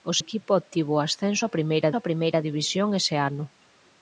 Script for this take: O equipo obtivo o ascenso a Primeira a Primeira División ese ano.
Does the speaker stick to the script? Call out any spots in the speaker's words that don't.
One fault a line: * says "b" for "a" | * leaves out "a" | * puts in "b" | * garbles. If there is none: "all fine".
all fine